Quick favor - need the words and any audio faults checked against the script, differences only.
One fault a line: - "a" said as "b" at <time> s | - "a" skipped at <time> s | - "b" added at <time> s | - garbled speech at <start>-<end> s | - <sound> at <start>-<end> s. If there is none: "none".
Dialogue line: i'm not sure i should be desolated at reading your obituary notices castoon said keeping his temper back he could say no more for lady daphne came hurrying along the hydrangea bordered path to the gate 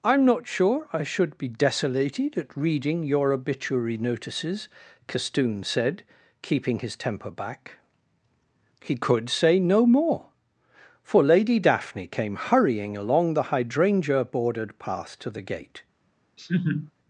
- laugh at 16.4-16.9 s